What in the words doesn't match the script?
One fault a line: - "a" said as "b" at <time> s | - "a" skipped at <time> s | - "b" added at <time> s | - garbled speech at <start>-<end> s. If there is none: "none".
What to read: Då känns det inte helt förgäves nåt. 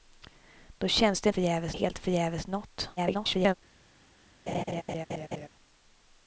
- "inte" said as "förgäves" at 1.3 s
- garbled speech at 3.0-3.5 s